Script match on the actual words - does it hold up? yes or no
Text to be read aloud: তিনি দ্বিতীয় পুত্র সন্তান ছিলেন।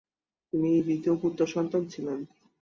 yes